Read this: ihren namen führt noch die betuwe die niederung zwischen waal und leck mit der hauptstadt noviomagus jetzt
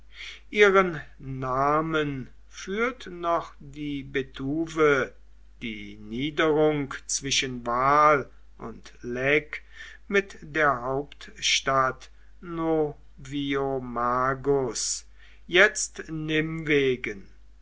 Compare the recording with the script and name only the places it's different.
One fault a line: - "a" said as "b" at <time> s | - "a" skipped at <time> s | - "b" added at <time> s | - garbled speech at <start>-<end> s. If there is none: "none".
none